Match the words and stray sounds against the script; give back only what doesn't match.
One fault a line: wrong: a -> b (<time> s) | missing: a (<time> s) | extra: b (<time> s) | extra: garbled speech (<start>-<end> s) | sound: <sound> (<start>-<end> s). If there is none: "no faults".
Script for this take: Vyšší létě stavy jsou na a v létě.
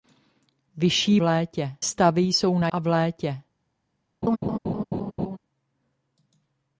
sound: laugh (4.2-5.4 s)